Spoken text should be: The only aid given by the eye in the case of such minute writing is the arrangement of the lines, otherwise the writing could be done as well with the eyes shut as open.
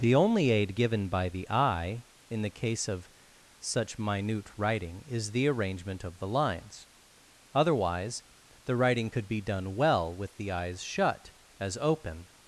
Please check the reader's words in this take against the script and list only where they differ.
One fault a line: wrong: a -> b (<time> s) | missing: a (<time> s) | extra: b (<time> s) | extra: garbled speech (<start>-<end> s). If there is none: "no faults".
missing: as (9.7 s)